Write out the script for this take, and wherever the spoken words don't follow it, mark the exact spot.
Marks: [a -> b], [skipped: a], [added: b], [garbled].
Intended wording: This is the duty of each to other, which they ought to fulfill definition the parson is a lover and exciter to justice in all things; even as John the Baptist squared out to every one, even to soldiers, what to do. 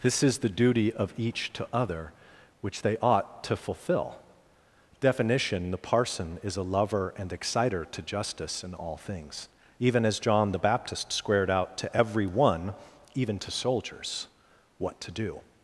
This is the duty of each to other, which they ought to fulfill definition the parson is a lover and exciter to justice in all things; even as John the Baptist squared out to every one, even to soldiers, what to do.